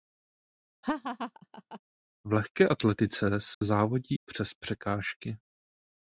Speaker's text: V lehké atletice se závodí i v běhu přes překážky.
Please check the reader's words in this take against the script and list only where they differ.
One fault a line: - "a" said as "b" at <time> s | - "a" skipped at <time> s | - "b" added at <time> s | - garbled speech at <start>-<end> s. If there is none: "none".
- "i v běhu" skipped at 4.1 s